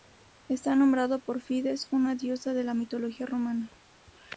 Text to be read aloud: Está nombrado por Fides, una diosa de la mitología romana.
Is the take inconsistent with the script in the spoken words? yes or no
no